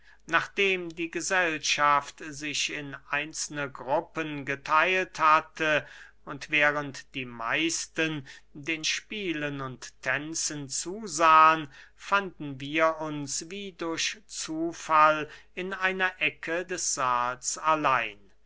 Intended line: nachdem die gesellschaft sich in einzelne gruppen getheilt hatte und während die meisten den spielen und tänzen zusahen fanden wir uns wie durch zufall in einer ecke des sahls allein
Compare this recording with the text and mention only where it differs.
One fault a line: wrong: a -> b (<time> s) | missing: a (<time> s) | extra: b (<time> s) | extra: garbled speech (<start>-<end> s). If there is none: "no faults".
no faults